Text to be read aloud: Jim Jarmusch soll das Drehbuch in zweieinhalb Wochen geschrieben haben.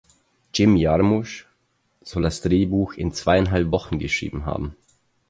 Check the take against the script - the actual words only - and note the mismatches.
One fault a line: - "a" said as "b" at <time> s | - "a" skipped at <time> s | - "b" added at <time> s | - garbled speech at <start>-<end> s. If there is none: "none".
none